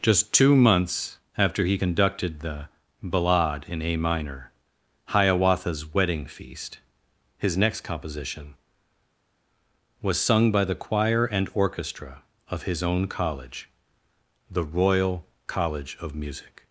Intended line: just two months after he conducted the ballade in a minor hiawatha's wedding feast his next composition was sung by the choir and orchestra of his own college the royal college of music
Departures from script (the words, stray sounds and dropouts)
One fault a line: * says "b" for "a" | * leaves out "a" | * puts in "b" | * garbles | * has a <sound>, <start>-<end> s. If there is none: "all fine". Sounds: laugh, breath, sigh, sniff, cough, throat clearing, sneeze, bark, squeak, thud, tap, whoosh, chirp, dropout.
all fine